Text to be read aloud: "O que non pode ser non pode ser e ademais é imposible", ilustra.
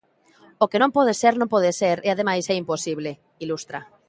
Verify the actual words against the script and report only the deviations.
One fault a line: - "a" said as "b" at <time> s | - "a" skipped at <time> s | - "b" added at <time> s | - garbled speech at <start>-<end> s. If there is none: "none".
none